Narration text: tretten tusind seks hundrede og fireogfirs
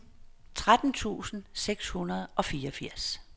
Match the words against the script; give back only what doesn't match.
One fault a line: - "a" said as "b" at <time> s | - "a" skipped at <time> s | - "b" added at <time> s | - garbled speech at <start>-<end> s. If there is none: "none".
none